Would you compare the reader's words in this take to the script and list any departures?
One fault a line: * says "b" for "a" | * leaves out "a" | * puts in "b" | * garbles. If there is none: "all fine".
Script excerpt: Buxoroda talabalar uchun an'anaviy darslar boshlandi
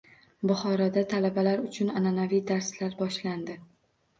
all fine